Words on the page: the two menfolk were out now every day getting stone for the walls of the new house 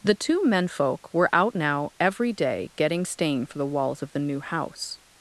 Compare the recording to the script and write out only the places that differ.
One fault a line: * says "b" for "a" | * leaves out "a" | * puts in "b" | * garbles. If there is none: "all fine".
* says "stain" for "stone"